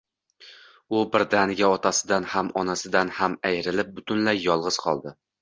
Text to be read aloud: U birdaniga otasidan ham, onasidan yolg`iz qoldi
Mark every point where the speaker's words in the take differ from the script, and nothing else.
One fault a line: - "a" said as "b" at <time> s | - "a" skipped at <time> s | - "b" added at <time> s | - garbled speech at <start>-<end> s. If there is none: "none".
- "ham ayrilib butunlay" added at 3.2 s